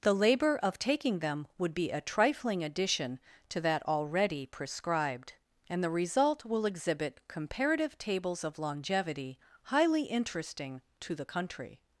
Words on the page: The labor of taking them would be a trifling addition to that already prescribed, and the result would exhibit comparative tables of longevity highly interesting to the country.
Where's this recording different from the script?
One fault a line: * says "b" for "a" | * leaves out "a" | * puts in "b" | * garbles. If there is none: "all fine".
* says "will" for "would"